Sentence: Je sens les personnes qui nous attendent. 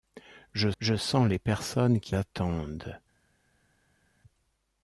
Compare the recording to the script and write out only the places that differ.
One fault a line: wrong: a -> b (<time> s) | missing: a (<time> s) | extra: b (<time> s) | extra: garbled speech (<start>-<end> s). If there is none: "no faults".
extra: je (0.8 s)
missing: nous (2.2 s)